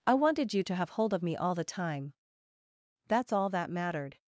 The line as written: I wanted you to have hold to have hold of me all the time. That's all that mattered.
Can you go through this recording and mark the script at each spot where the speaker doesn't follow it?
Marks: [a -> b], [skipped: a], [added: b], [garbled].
I wanted you to have hold [skipped: to have hold] of me all the time. That's all that mattered.